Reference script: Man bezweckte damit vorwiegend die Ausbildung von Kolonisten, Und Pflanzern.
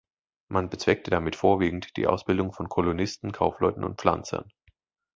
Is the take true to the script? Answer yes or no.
no